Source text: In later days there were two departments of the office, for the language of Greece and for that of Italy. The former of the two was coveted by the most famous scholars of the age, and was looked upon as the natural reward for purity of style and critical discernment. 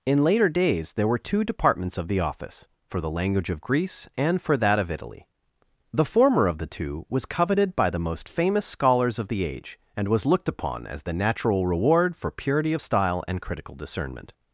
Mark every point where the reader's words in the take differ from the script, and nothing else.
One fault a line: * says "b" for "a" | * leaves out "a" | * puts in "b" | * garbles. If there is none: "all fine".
all fine